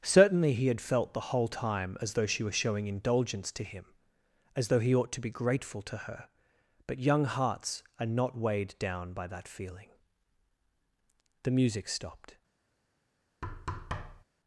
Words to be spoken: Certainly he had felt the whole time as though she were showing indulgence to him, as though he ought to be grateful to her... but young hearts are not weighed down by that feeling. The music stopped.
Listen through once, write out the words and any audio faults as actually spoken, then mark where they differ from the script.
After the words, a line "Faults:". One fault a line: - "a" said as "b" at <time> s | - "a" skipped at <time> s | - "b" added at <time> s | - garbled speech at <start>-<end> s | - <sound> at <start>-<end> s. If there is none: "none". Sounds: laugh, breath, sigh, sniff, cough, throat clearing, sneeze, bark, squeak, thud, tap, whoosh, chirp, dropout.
Certainly he had felt the whole time as though she were showing indulgence to him, as though he ought to be grateful to her... but young hearts are not weighed down by that feeling. The music stopped.
Faults:
- thud at 13.4-14.2 s